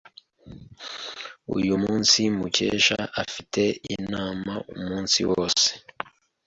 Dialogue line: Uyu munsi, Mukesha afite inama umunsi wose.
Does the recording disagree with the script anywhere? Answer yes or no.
no